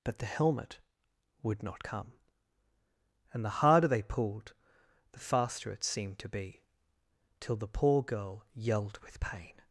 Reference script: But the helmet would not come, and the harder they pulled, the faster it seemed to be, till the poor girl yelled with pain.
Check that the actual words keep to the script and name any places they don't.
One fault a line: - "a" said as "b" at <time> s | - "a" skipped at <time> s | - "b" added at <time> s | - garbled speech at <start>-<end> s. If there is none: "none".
none